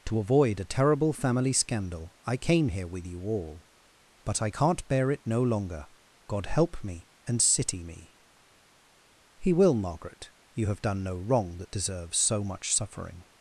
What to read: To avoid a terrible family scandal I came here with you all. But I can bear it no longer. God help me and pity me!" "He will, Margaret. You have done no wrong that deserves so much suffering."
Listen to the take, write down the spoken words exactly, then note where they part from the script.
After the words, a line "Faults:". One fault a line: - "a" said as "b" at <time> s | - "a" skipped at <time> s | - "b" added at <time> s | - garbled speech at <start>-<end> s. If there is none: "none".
To avoid a terrible family scandal I came here with you all. But I can't bear it no longer. God help me and city me!" "He will, Margaret. You have done no wrong that deserves so much suffering."
Faults:
- "can" said as "can't" at 4.5 s
- "pity" said as "city" at 7.4 s